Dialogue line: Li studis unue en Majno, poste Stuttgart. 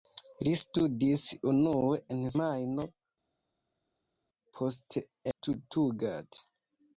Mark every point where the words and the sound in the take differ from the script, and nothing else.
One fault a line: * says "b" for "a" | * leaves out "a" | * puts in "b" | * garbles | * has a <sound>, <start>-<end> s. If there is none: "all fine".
all fine